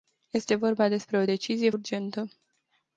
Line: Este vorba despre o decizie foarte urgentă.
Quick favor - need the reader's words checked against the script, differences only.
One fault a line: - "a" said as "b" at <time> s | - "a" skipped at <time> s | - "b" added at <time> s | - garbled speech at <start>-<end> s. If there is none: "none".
- "foarte" skipped at 1.7 s